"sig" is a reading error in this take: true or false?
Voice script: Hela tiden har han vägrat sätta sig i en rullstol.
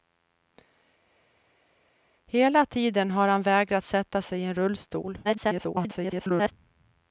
false